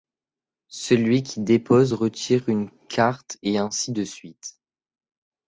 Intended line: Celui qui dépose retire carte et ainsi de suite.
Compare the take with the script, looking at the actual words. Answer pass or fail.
fail